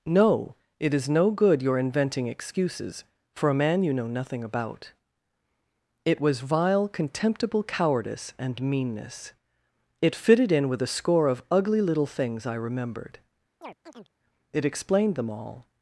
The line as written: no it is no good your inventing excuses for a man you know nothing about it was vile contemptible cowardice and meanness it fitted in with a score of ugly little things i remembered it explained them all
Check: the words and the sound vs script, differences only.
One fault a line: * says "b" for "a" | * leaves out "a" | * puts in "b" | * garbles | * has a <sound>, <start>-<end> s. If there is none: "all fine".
* has a chirp, 13.6-14.1 s